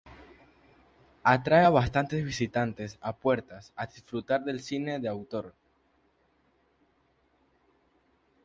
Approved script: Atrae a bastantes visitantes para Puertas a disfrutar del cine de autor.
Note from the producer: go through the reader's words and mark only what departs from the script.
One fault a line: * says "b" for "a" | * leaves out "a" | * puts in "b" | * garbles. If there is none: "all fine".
* says "a" for "para"